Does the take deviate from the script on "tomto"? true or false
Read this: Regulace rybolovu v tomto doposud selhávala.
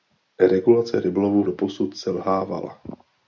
true